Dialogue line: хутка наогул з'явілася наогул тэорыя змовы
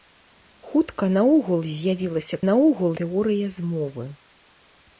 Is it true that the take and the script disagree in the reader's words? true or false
false